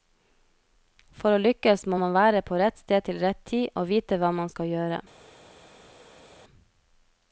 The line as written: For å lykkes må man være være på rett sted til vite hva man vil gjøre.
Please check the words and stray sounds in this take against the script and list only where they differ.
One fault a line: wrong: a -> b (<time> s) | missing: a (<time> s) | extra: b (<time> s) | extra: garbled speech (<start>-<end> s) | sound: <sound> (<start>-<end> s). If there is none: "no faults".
missing: være (2.4 s)
extra: rett tid og (3.2 s)
wrong: vil -> skal (4.5 s)